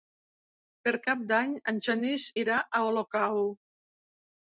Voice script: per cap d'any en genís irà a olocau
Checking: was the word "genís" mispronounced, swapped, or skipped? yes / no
no